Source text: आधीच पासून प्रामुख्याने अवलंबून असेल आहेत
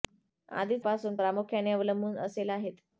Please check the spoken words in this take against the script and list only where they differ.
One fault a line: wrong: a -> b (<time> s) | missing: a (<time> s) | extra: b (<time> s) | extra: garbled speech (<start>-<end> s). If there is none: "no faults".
no faults